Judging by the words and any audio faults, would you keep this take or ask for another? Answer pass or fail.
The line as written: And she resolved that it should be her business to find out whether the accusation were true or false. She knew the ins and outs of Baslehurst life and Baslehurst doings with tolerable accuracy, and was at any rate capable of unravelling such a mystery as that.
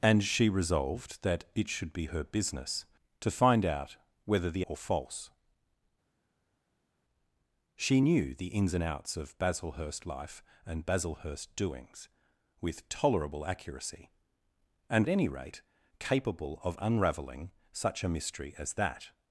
fail